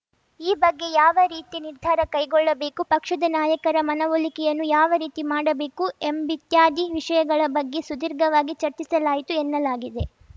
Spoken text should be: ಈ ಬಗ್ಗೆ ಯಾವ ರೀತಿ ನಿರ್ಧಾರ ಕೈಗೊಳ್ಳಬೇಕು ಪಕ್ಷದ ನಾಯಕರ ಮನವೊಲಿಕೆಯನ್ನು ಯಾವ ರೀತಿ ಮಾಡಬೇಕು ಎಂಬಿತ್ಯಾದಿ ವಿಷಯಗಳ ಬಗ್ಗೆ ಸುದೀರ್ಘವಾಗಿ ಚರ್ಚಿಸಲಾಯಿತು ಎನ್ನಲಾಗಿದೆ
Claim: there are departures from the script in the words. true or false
false